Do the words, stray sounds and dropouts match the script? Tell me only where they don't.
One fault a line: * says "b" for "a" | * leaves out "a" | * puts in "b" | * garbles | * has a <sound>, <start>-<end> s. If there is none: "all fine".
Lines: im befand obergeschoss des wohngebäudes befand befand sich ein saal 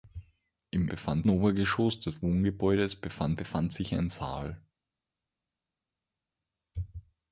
all fine